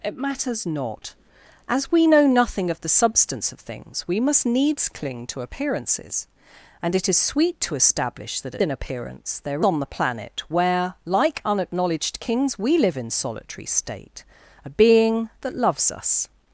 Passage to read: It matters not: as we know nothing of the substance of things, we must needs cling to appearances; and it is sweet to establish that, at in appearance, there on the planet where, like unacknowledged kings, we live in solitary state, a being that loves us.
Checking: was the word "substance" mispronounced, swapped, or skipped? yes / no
no